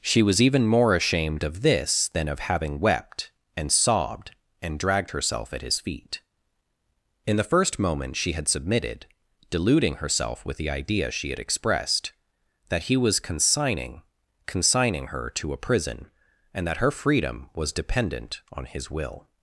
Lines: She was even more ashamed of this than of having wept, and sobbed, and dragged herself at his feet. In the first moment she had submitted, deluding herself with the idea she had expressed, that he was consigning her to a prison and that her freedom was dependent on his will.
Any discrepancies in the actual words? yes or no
yes